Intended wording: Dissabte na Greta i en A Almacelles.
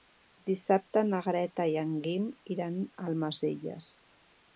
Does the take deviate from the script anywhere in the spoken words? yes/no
yes